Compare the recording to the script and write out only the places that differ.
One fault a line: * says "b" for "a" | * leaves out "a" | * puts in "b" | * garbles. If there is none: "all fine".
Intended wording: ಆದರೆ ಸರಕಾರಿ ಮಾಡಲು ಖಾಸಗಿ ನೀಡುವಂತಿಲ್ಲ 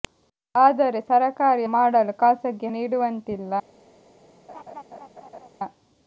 all fine